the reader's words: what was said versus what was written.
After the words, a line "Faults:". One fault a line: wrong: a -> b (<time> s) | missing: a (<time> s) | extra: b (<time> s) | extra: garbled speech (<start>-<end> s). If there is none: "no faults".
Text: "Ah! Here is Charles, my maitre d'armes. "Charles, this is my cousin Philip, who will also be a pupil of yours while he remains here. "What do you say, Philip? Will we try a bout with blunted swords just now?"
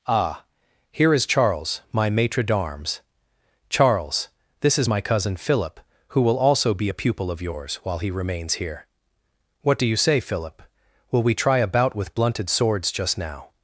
"Ah! Here is Charles, my maitre d'armes. "Charles, this is my cousin Philip, who will also be a pupil of yours while he remains here. "What do you say, Philip? Will we try a bout with blunted swords just now?"
Faults:
no faults